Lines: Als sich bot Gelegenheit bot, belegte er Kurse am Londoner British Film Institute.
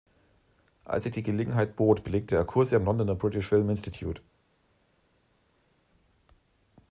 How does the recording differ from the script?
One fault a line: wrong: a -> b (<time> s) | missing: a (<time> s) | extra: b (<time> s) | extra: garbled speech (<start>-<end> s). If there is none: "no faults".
wrong: bot -> die (1.1 s)